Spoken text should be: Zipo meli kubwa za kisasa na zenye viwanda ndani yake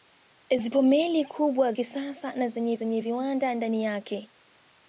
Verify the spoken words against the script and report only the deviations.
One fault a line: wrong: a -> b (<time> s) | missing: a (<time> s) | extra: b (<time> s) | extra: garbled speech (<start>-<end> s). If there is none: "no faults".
missing: za (1.7 s)
extra: zenye (2.7 s)